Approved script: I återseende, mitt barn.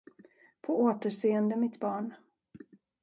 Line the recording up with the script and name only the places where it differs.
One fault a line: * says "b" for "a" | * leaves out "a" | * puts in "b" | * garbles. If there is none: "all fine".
* says "På" for "I"